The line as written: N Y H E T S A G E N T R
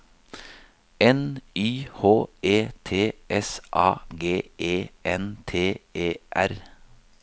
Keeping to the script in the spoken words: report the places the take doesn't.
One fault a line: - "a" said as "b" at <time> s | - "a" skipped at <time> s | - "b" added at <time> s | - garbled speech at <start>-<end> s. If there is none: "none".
- "E" added at 5.9 s